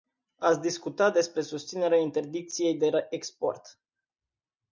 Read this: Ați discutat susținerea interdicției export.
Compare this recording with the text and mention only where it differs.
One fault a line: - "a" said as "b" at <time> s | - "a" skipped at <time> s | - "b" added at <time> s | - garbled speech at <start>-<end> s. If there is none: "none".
- "despre" added at 1.1 s
- "de" added at 2.8 s